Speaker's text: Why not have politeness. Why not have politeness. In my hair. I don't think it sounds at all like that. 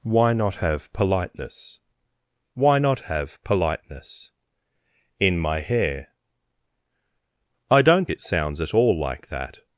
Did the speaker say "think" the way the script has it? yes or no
no